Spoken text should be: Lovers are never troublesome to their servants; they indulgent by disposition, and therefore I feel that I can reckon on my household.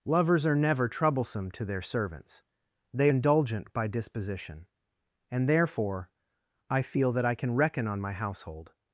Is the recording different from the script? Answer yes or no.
no